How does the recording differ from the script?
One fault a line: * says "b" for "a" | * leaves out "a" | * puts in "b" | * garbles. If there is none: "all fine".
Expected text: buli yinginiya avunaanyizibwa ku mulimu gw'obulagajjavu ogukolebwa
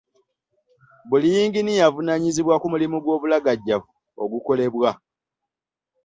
all fine